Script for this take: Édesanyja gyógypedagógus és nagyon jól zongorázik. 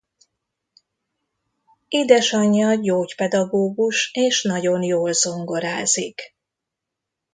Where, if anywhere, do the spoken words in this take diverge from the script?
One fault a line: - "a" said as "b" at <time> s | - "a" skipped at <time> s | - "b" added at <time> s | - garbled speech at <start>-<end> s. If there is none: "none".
none